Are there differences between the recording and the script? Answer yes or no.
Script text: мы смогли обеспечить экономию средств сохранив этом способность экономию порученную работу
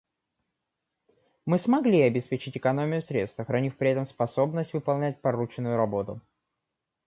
yes